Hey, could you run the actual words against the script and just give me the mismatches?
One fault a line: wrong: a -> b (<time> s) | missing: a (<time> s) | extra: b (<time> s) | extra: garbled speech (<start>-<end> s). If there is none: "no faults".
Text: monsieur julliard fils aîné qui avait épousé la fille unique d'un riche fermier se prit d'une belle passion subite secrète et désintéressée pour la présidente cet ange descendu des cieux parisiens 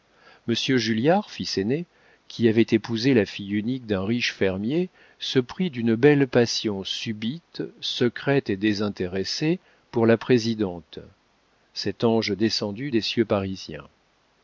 no faults